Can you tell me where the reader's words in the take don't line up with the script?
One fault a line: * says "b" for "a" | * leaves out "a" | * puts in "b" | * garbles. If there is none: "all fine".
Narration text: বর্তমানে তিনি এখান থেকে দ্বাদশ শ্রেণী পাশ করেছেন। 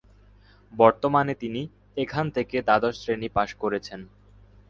all fine